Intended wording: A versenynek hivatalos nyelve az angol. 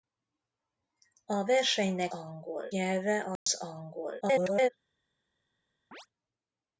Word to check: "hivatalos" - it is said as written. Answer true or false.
false